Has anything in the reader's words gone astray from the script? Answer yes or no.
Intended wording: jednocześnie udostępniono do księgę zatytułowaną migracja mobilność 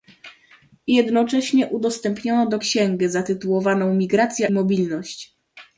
no